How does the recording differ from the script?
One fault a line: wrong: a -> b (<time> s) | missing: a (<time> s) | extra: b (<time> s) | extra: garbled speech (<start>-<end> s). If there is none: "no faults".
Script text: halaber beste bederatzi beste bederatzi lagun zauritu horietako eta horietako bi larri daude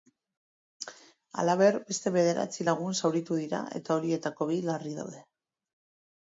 missing: beste bederatzi (2.7 s)
wrong: horietako -> dira (3.4 s)